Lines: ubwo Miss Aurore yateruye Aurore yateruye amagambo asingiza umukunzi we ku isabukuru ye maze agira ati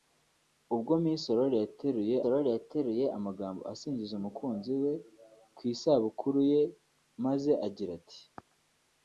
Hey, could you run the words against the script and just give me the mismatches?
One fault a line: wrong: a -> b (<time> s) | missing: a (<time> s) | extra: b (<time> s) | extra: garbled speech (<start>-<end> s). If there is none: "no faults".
no faults